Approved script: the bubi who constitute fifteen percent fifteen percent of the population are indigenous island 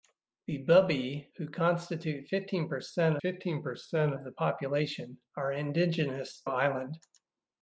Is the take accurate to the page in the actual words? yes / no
yes